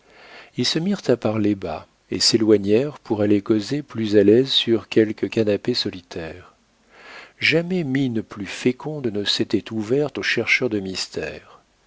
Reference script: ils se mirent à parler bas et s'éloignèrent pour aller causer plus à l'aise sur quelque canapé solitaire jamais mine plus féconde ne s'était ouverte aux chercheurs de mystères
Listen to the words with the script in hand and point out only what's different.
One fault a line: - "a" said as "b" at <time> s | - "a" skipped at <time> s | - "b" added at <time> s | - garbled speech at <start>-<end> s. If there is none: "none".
none